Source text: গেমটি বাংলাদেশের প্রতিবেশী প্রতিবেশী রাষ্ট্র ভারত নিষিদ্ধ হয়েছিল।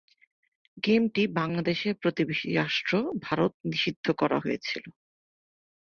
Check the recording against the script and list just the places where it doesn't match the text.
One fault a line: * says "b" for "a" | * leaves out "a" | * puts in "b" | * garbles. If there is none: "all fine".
* leaves out "প্রতিবেশী"
* puts in "করা"